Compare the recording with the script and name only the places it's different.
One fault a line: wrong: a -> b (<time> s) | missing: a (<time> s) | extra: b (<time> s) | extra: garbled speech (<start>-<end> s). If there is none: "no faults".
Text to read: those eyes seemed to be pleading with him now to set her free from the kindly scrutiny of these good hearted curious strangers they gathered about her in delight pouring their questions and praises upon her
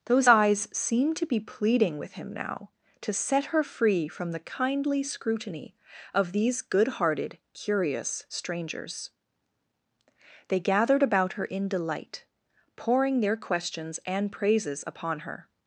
no faults